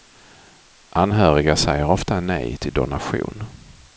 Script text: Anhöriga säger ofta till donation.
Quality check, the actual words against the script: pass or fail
fail